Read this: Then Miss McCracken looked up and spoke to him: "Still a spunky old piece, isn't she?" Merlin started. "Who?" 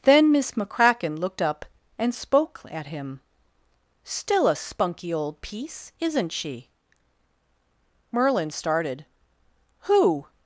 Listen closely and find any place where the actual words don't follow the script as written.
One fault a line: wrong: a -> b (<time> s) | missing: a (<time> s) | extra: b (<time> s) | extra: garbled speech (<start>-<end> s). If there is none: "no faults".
wrong: to -> at (2.7 s)